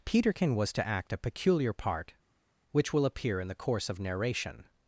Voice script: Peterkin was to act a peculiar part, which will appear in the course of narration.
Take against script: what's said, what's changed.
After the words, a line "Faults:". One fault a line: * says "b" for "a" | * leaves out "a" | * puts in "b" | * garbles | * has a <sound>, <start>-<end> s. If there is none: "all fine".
Peterkin was to act a peculiar part, which will appear in the course of narration.
Faults:
all fine